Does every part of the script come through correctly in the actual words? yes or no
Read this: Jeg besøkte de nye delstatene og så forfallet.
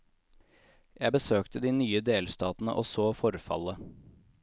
yes